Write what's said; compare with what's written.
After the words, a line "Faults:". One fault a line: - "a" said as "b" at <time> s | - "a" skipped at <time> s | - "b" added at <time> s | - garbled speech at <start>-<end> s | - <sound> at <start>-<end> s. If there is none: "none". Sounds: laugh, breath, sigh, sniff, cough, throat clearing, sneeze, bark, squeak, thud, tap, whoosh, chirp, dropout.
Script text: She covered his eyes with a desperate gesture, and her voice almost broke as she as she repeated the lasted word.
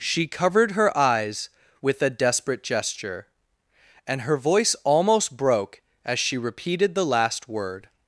She covered her eyes with a desperate gesture, and her voice almost broke as she repeated the last word.
Faults:
- "his" said as "her" at 0.7 s
- "as she" skipped at 6.4 s
- "lasted" said as "last" at 7.0 s